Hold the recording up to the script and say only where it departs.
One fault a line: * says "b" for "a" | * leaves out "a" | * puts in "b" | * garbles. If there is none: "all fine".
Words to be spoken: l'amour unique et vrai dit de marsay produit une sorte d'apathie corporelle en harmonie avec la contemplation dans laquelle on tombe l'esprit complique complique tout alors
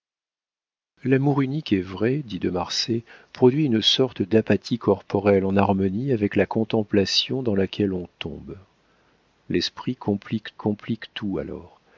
all fine